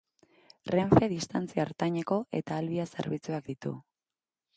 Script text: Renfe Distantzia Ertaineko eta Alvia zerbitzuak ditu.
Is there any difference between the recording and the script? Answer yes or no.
no